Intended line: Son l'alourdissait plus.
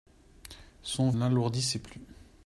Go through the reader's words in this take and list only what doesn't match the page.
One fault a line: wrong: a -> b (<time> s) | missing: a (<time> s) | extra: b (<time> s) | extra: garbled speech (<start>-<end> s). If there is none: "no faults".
no faults